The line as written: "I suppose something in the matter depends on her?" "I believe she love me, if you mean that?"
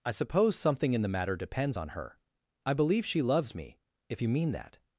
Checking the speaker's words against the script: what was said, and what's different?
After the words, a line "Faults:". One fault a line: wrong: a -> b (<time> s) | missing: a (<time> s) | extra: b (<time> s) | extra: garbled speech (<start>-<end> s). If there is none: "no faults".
"I suppose something in the matter depends on her?" "I believe she loves me, if you mean that?"
Faults:
wrong: love -> loves (3.2 s)